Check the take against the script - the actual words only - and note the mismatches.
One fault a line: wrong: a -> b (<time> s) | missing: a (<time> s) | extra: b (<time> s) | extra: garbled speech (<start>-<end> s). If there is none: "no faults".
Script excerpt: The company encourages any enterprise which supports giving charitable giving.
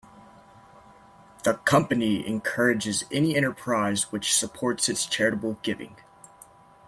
wrong: giving -> its (4.9 s)